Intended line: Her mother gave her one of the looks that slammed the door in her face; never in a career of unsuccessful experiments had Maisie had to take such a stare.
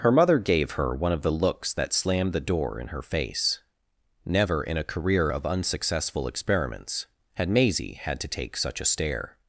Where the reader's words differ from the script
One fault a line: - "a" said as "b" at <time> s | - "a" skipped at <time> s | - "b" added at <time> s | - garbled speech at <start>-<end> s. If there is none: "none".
none